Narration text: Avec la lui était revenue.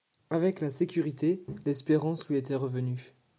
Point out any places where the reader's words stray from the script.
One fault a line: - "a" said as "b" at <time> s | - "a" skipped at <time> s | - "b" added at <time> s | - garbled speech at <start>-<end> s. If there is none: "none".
- "sécurité l'espérance" added at 0.7 s